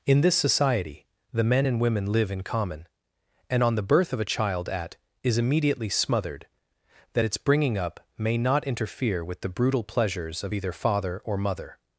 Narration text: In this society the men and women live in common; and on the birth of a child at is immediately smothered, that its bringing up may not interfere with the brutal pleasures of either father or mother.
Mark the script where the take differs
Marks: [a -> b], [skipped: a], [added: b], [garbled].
In this society the men and women live in common; and on the birth of a child at is immediately smothered, that its bringing up may not interfere with the brutal pleasures of either father or mother.